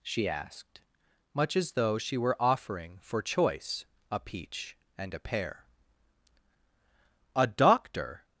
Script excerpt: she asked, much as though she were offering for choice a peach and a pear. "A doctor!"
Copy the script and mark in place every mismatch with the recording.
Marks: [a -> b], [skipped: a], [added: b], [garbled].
she asked, much as though she were offering for choice a peach and a pear. "A doctor!"